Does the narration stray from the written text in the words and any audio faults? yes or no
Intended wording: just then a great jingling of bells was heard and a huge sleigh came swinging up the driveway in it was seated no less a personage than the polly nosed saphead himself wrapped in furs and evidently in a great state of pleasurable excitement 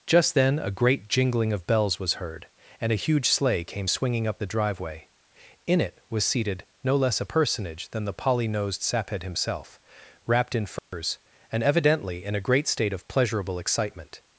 yes